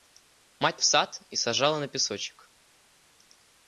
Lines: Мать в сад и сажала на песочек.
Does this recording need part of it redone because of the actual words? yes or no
no